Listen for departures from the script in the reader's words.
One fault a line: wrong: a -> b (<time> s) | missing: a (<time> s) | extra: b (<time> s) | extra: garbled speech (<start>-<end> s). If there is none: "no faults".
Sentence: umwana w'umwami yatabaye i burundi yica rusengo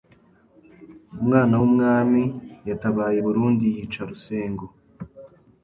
no faults